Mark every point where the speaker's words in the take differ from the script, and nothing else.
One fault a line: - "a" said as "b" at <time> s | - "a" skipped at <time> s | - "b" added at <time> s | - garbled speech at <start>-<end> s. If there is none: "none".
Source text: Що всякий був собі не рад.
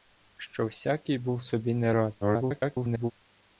- garbled speech at 2.2-3.1 s